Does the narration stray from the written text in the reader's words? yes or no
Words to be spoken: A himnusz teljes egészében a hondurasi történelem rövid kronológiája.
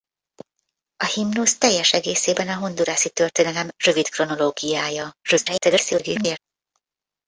yes